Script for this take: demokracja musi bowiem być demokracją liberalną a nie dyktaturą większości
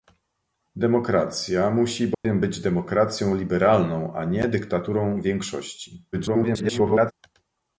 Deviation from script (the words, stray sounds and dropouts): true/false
true